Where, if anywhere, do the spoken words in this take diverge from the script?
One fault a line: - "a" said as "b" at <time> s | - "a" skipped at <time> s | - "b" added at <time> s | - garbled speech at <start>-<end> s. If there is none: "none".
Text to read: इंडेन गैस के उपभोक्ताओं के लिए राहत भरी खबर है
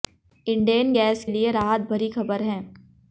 - "के उपभोक्ताओं के" skipped at 1.2 s